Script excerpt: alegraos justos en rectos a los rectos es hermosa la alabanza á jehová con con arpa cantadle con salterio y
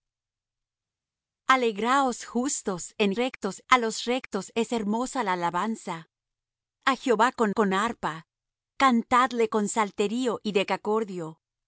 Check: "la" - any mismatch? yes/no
no